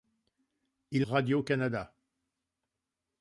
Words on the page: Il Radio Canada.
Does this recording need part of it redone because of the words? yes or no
no